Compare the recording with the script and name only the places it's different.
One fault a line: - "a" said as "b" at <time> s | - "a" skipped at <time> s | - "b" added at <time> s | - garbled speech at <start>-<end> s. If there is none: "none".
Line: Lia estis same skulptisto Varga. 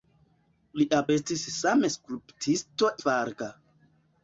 none